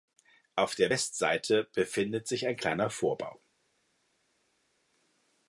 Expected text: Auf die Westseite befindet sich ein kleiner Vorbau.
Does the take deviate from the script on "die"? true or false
true